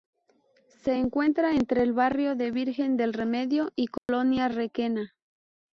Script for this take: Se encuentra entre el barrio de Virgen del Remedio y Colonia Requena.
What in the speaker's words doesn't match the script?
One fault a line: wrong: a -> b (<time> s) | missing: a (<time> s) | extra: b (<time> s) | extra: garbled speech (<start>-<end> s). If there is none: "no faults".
no faults